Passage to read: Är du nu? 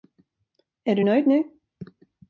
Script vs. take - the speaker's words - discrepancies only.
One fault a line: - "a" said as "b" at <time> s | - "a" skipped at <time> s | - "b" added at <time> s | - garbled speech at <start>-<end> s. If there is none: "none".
- "nöjd" added at 1.0 s